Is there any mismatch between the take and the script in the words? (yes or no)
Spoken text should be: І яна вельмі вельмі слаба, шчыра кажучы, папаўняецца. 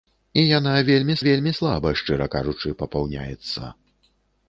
no